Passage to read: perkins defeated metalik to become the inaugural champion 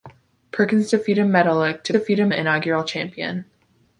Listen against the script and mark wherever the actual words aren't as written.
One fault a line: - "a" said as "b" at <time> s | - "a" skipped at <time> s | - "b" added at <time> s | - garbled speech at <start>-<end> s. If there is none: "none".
- "become" said as "defeated" at 1.9 s